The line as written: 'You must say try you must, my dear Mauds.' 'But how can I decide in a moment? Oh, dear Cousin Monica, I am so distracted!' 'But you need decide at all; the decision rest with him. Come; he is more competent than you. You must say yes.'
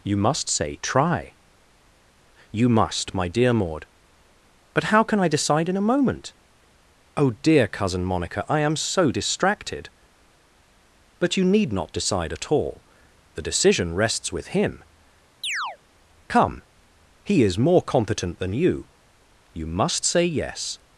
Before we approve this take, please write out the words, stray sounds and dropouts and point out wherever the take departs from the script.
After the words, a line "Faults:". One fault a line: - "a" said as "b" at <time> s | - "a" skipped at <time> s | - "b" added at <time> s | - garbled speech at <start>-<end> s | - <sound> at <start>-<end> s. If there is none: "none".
'You must say try you must, my dear Maud.' 'But how can I decide in a moment? Oh, dear Cousin Monica, I am so distracted!' 'But you need not decide at all; the decision rests with him. Come; he is more competent than you. You must say yes.'
Faults:
- "Mauds" said as "Maud" at 3.5 s
- "not" added at 11.7 s
- "rest" said as "rests" at 13.9 s
- chirp at 15.4-15.8 s